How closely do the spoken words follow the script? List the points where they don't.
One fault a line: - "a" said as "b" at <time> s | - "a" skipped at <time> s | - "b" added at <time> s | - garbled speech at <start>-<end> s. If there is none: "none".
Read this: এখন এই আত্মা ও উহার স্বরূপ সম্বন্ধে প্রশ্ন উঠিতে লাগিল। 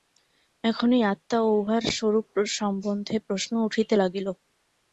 none